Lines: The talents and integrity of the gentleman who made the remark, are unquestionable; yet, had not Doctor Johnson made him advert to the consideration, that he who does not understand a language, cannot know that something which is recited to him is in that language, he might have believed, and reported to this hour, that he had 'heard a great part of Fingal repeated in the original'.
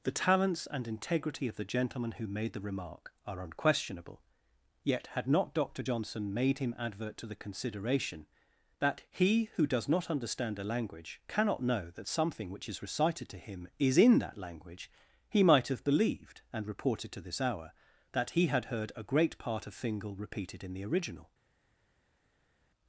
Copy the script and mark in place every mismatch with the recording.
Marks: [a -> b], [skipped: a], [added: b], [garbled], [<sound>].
The talents and integrity of the gentleman who made the remark, are unquestionable; yet, had not Doctor Johnson made him advert to the consideration, that he who does not understand a language, cannot know that something which is recited to him is in that language, he might have believed, and reported to this hour, that he had 'heard a great part of Fingal repeated in the original'.